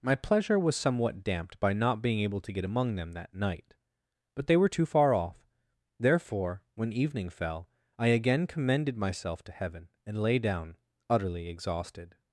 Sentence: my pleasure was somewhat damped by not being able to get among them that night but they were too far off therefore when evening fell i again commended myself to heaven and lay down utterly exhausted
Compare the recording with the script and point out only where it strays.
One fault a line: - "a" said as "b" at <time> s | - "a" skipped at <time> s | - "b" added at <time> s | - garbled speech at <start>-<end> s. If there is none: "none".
none